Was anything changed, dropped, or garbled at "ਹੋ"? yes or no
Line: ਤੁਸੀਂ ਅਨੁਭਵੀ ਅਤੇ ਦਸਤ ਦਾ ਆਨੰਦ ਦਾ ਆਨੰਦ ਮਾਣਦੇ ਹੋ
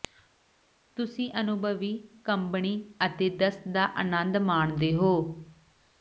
no